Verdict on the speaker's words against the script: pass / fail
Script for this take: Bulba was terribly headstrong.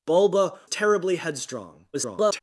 fail